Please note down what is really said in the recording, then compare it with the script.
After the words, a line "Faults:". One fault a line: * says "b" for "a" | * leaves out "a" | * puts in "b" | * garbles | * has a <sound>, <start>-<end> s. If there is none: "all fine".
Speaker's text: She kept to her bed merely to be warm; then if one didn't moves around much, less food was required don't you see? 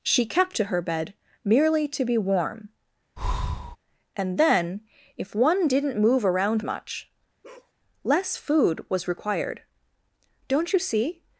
She kept to her bed merely to be warm; and then if one didn't move around much, less food was required don't you see?
Faults:
* has a breath, 3.2-3.8 s
* puts in "and"
* says "move" for "moves"
* has a bark, 7.4-7.7 s